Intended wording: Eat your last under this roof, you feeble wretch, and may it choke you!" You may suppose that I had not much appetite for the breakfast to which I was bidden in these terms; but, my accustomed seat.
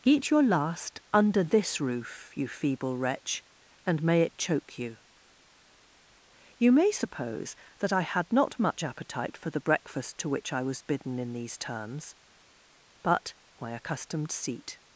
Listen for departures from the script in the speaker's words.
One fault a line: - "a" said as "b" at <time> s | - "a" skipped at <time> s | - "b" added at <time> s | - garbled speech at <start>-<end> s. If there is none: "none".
none